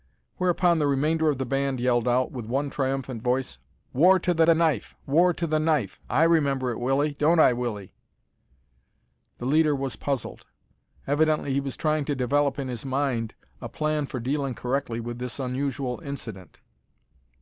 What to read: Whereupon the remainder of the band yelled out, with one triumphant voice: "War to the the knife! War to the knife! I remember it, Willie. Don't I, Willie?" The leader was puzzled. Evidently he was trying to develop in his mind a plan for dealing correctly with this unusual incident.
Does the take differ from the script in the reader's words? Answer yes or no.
no